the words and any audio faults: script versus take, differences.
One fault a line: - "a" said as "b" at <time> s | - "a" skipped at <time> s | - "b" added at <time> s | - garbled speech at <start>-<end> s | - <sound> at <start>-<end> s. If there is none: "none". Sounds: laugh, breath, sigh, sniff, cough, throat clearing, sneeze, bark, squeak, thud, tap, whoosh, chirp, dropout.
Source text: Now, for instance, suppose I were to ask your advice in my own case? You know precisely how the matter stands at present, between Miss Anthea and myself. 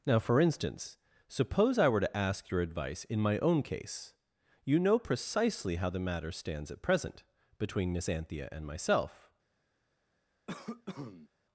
- cough at 10.5-11.3 s